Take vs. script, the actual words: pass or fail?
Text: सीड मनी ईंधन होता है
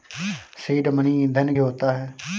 pass